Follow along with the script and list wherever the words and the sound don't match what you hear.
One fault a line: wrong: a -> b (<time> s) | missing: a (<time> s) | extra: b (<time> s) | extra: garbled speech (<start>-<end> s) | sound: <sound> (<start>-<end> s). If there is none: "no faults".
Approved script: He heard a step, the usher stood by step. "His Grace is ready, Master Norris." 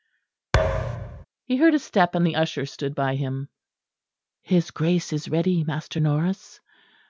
sound: thud (0.5-1.3 s)
extra: and (2.1 s)
wrong: step -> him (3.2 s)